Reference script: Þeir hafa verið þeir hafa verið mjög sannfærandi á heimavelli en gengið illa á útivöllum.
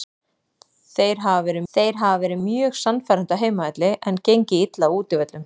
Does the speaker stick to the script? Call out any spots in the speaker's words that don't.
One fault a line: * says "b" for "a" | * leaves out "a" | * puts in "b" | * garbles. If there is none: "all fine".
all fine